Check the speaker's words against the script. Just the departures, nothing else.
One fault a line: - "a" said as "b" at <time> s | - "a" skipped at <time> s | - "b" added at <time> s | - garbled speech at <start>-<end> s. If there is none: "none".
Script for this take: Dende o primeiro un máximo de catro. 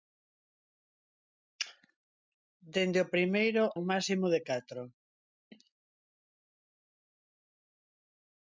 none